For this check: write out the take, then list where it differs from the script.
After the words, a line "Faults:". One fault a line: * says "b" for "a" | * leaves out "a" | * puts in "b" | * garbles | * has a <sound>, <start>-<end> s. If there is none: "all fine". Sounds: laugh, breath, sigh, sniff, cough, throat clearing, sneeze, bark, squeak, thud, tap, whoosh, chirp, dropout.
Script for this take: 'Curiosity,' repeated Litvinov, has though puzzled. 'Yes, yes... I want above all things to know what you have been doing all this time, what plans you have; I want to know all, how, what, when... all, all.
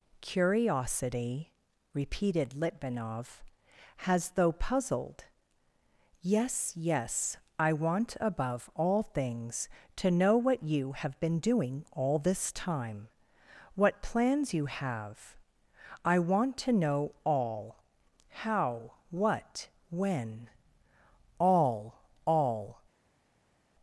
'Curiosity,' repeated Litvinov, has though puzzled. 'Yes, yes... I want above all things to know what you have been doing all this time, what plans you have; I want to know all, how, what, when... all, all.
Faults:
all fine